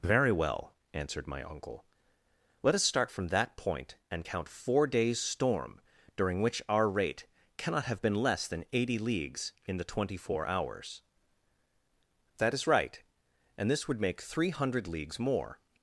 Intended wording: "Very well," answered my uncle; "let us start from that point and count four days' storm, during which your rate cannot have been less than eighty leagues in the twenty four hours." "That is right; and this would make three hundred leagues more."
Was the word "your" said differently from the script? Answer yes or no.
yes